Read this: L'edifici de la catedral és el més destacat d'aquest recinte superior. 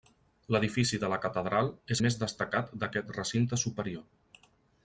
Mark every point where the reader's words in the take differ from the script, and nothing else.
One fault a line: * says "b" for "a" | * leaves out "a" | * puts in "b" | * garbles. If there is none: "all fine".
* leaves out "el"